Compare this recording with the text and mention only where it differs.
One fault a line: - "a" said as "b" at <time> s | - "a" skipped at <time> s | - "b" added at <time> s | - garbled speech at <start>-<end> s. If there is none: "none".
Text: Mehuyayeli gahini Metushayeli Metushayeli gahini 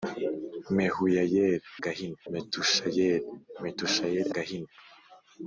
none